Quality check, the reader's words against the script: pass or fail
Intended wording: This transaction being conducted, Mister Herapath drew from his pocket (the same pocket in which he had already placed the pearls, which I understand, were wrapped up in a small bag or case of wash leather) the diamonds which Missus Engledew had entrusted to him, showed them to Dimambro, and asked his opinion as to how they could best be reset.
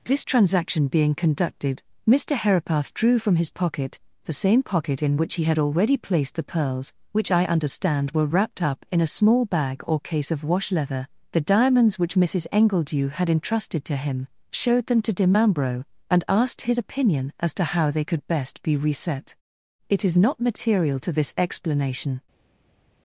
fail